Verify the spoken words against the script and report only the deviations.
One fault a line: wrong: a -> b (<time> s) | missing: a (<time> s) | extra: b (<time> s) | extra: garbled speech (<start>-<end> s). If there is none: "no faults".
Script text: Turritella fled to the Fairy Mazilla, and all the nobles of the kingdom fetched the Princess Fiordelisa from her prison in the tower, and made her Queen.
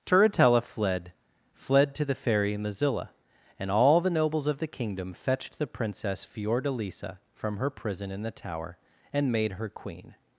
extra: fled (1.5 s)